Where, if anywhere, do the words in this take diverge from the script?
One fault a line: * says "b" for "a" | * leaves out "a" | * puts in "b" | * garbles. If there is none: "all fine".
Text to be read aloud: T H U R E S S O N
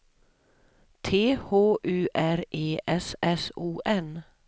all fine